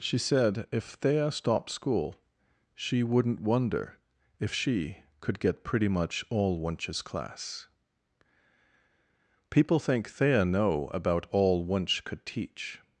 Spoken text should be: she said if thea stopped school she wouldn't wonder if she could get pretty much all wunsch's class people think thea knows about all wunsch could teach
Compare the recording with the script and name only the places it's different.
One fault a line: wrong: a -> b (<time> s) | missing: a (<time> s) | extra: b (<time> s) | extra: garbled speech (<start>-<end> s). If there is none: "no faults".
wrong: knows -> know (10.4 s)